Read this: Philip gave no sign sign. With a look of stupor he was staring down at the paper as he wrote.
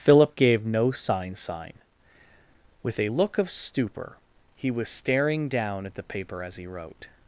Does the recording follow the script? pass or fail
pass